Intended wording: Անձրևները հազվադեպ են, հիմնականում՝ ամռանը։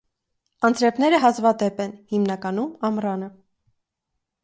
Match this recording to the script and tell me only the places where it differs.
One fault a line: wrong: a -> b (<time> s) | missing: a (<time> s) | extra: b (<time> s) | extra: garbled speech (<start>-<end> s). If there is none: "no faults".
no faults